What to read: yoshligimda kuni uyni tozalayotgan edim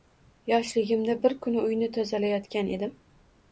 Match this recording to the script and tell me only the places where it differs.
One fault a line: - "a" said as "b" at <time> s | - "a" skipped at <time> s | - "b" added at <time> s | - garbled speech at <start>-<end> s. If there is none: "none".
- "bir" added at 1.3 s